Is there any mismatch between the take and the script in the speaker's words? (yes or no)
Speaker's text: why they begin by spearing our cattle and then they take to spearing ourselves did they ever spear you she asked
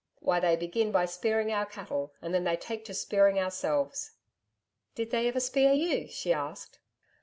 no